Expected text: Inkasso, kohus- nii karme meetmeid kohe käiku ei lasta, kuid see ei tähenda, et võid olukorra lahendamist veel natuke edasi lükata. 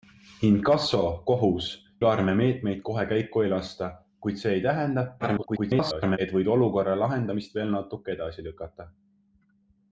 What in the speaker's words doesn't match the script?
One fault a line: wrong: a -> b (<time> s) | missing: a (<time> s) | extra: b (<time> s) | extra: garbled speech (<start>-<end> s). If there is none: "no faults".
missing: nii (1.8 s)
extra: garbled speech (5.2-6.2 s)